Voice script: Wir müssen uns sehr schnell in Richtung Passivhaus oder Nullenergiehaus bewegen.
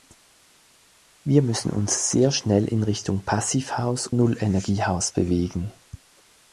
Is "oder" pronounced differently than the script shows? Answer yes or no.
yes